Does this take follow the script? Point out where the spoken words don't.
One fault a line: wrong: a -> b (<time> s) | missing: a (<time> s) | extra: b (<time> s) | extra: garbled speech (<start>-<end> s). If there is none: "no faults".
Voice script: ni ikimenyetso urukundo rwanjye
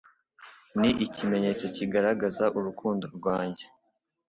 extra: kigaragaza (1.8 s)